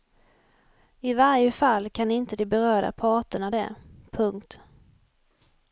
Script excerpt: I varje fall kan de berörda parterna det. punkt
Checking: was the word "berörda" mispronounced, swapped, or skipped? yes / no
no